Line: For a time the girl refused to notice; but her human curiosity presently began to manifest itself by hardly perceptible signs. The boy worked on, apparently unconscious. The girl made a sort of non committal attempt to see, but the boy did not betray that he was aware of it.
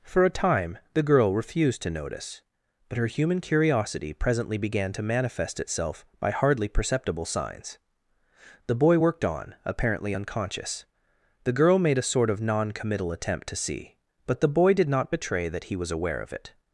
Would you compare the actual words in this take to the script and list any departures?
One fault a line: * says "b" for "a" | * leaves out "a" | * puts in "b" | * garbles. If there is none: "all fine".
all fine